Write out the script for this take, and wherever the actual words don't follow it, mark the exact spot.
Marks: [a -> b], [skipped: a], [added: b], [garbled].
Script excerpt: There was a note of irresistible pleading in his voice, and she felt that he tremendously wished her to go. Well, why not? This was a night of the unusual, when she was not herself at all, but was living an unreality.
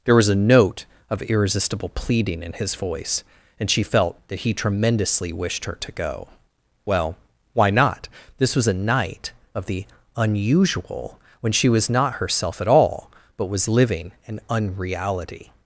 There was a note of irresistible pleading in his voice, and she felt that he tremendously wished her to go. Well, why not? This was a night of the unusual, when she was not herself at all, but was living an unreality.